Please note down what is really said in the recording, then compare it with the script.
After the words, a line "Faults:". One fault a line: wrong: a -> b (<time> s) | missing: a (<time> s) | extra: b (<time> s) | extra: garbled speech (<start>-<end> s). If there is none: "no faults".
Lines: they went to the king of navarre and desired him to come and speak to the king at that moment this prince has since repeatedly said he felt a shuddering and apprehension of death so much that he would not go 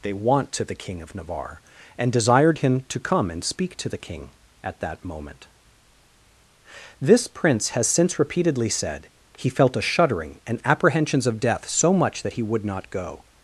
they want to the king of navarre and desired him to come and speak to the king at that moment this prince has since repeatedly said he felt a shuddering and apprehensions of death so much that he would not go
Faults:
wrong: went -> want (0.1 s)
wrong: apprehension -> apprehensions (10.6 s)